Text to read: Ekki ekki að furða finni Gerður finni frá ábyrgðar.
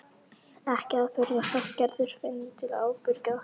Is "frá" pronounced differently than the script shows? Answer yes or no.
yes